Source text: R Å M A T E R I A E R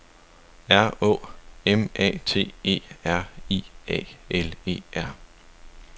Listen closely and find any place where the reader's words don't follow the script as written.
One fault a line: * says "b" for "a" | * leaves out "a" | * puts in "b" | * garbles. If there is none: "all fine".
* puts in "L"